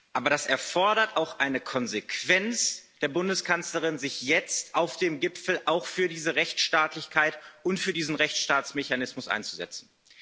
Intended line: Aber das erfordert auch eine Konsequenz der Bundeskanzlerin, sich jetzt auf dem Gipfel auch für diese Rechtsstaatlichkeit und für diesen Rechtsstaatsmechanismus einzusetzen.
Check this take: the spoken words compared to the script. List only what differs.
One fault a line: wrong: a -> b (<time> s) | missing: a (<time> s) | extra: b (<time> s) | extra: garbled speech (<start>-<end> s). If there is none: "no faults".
no faults